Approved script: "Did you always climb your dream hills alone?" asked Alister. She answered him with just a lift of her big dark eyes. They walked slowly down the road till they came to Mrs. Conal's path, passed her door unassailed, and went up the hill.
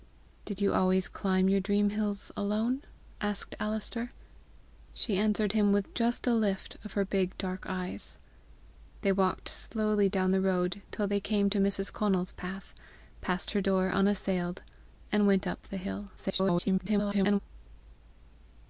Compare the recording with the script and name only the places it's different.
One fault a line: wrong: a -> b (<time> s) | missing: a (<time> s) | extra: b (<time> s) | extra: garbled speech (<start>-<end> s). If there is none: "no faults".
extra: garbled speech (16.2-17.4 s)